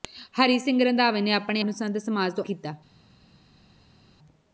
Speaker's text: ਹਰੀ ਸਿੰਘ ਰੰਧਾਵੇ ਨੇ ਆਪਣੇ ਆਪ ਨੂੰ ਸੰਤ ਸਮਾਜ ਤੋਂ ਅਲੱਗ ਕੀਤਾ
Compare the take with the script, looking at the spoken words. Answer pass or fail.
fail